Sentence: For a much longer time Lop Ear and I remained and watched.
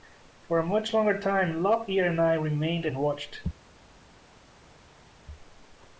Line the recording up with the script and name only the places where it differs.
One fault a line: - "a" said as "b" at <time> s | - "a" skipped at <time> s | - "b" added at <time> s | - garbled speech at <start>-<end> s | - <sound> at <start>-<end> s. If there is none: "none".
none